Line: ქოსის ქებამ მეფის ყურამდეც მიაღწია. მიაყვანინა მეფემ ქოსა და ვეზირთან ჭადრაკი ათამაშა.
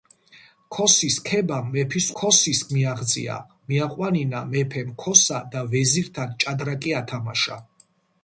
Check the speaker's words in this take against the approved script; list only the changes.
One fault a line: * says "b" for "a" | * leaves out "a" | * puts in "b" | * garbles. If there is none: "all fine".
* says "ქოსის" for "ყურამდეც"